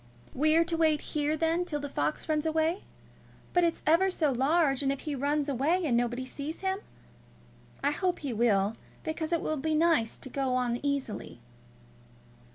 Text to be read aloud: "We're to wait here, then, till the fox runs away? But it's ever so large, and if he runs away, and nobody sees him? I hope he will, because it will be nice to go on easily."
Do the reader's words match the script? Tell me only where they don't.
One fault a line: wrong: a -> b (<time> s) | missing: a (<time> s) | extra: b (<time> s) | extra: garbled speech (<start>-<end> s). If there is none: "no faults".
no faults